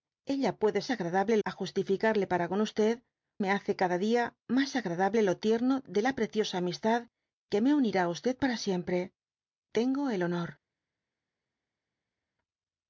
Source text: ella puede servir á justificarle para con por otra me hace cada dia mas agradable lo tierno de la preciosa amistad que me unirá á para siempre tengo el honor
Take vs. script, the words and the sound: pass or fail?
fail